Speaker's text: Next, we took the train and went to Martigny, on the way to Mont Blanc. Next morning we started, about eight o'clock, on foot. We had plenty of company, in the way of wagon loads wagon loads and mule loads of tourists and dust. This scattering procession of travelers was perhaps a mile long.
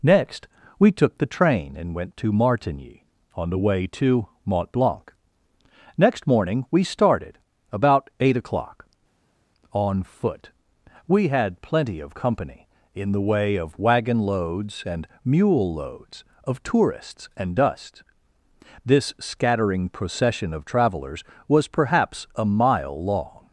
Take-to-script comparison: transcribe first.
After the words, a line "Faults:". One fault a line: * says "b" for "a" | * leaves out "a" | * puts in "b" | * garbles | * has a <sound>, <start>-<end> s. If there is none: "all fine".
Next, we took the train and went to Martigny, on the way to Mont Blanc. Next morning we started, about eight o'clock, on foot. We had plenty of company, in the way of wagon loads and mule loads of tourists and dust. This scattering procession of travelers was perhaps a mile long.
Faults:
* leaves out "wagon loads"